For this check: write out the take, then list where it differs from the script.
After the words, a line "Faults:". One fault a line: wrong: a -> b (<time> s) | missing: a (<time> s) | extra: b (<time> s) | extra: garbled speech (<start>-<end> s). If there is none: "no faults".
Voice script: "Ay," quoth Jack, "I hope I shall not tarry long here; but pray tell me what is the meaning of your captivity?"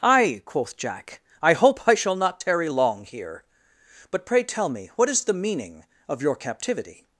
"Ay," quoth Jack, "I hope I shall not tarry long here; but pray tell me what is the meaning of your captivity?"
Faults:
no faults